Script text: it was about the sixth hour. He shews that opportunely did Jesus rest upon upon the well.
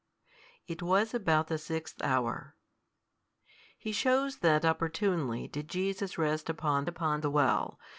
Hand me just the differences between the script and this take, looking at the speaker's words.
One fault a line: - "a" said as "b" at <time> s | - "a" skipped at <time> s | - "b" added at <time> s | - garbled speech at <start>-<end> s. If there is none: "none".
none